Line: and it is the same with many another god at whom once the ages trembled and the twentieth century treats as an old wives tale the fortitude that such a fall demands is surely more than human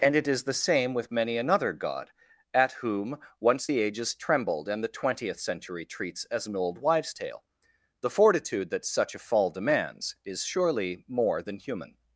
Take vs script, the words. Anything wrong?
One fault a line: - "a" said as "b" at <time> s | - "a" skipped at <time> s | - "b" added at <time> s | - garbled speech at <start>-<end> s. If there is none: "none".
none